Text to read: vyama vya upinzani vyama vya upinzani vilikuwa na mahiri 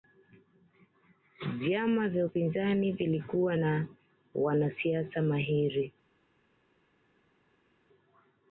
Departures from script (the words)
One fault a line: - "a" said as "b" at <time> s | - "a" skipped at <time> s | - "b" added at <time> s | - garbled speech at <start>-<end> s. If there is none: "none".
- "vyama vya upinzani" skipped at 2.9 s
- "wanasiasa" added at 4.3 s